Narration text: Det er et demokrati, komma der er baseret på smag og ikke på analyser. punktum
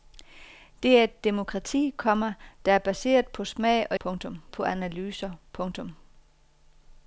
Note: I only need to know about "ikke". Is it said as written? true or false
false